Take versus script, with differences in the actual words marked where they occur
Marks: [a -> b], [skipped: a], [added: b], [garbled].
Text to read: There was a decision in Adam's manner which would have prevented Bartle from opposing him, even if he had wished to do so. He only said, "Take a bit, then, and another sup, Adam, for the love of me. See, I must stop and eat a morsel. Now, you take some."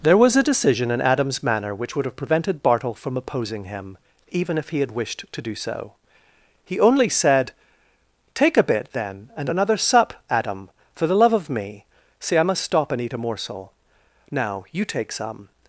There was a decision in Adam's manner which would have prevented Bartle from opposing him, even if he had wished to do so. He only said, "Take a bit, then, and another sup, Adam, for the love of me. See, I must stop and eat a morsel. Now, you take some."